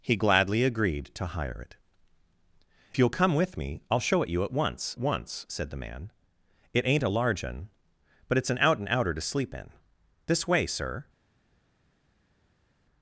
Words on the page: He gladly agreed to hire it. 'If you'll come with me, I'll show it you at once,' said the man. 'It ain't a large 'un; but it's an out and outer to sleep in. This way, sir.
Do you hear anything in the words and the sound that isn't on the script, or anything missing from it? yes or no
yes